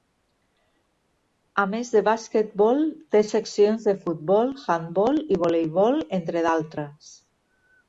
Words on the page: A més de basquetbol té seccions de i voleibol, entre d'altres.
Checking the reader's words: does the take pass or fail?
fail